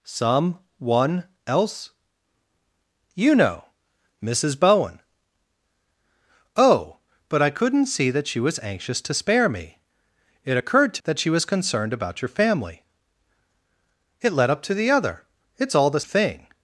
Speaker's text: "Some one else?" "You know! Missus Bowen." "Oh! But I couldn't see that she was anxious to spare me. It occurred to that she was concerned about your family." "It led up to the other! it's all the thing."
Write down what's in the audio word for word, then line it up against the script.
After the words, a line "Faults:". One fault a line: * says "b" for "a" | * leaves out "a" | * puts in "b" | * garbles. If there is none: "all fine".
"Some one else?" "You know! Missus Bowen." "Oh! But I couldn't see that she was anxious to spare me. It occurred to that she was concerned about your family." "It led up to the other! it's all the thing."
Faults:
all fine